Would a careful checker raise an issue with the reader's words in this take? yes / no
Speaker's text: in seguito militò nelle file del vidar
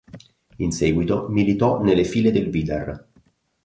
no